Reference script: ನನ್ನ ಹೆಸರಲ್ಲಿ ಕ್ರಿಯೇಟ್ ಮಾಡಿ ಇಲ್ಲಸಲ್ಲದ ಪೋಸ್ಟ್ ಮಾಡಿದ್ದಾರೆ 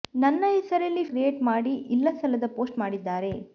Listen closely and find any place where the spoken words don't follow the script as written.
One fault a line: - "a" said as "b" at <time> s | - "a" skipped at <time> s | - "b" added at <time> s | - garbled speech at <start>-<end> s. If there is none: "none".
none